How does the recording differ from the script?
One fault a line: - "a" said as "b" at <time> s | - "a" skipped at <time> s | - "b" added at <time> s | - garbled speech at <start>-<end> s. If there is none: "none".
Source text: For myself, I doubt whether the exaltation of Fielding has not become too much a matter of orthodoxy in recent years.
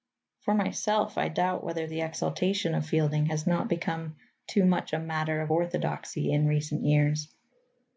none